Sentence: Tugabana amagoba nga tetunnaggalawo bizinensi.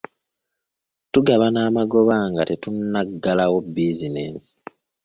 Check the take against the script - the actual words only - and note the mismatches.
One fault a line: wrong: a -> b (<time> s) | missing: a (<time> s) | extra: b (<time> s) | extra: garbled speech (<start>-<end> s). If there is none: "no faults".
no faults